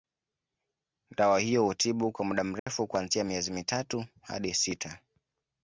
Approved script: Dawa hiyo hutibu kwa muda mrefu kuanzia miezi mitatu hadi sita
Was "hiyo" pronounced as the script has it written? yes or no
yes